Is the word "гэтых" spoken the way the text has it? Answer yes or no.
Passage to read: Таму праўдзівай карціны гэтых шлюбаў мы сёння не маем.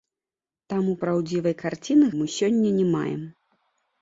no